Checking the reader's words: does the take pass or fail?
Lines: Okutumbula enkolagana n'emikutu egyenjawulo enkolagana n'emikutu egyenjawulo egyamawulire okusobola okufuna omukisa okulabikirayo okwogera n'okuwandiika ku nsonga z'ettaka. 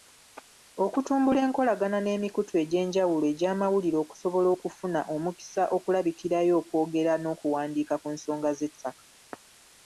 fail